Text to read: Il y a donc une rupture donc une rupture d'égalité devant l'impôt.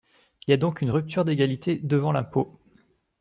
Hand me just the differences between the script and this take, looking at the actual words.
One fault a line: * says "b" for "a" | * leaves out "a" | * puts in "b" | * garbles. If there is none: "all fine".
* leaves out "donc une rupture"